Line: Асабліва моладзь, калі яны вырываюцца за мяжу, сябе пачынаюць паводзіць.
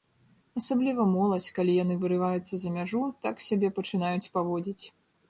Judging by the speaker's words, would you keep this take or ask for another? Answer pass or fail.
fail